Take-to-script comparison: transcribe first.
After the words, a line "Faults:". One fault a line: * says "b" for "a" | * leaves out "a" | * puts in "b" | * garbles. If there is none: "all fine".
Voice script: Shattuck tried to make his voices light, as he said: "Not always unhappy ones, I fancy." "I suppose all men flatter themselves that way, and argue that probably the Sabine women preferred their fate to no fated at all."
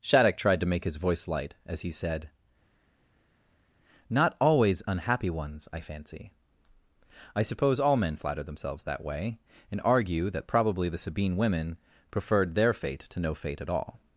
Shattuck tried to make his voice light, as he said: "Not always unhappy ones, I fancy." "I suppose all men flatter themselves that way, and argue that probably the Sabine women preferred their fate to no fate at all."
Faults:
* says "voice" for "voices"
* says "fate" for "fated"